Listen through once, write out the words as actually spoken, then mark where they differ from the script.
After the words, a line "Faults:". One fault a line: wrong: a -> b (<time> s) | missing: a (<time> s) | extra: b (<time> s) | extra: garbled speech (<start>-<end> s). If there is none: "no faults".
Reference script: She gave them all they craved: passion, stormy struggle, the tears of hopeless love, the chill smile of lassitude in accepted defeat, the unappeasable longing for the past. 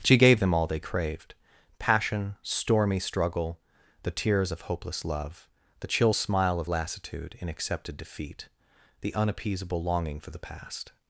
She gave them all they craved: passion, stormy struggle, the tears of hopeless love, the chill smile of lassitude in accepted defeat, the unappeasable longing for the past.
Faults:
no faults